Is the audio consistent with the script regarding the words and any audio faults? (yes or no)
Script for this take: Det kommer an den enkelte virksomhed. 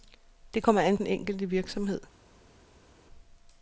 yes